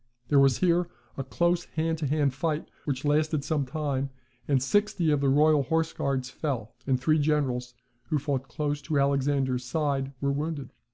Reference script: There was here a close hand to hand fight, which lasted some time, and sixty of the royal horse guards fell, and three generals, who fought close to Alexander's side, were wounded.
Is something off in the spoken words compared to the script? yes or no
no